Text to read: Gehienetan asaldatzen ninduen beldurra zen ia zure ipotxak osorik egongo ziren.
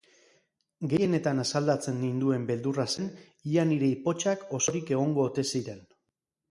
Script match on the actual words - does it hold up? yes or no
no